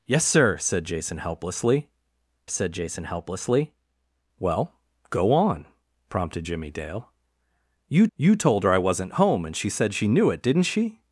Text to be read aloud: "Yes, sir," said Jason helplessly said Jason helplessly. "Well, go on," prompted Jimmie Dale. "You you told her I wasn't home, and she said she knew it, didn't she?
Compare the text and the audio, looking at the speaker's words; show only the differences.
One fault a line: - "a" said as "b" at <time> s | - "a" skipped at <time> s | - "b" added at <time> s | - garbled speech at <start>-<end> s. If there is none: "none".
none